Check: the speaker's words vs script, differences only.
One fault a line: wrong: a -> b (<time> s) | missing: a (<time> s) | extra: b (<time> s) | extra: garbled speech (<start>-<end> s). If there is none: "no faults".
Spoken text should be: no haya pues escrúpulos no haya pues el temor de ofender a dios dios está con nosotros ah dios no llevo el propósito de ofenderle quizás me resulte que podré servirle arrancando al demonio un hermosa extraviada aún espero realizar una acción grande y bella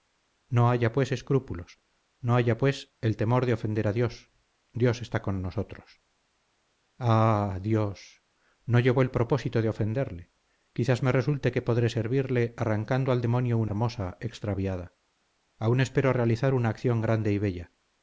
no faults